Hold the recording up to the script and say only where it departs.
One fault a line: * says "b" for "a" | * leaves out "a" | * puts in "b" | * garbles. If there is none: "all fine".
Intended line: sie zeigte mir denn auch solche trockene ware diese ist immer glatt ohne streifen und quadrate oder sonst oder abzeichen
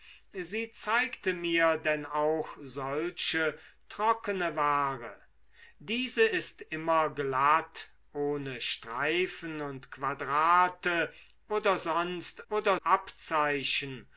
all fine